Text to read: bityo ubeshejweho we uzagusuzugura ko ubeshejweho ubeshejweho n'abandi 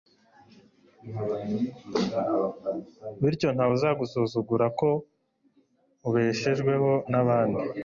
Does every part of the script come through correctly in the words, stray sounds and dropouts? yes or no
no